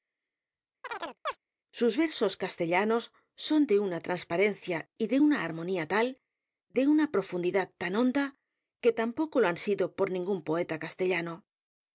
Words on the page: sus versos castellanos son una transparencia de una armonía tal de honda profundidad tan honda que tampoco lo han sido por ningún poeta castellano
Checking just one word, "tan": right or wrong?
right